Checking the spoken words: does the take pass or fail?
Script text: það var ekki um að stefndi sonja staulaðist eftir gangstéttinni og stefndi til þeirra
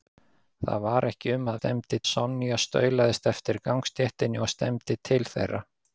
pass